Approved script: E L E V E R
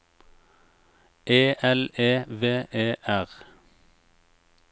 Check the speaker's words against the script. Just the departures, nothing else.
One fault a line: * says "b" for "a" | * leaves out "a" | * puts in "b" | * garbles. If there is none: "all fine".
all fine